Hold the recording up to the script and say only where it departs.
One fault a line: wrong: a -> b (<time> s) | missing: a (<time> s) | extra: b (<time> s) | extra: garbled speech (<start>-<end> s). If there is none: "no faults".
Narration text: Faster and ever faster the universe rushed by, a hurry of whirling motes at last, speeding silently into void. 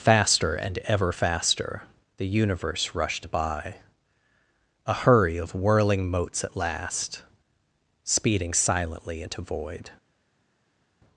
no faults